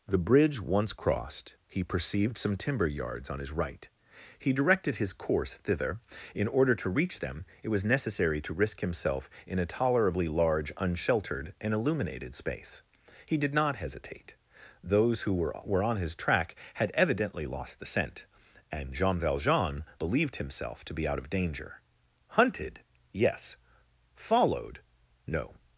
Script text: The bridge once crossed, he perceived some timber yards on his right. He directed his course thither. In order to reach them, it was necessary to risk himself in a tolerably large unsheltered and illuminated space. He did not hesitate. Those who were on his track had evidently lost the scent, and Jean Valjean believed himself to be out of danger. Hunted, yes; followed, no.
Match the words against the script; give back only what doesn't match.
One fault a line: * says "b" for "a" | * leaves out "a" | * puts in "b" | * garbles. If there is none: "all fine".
* puts in "were"